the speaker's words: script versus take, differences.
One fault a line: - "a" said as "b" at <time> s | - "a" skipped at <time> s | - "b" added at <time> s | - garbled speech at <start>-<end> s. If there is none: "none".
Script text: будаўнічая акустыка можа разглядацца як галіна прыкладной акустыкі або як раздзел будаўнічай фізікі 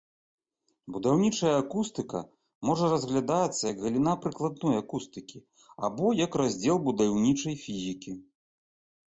none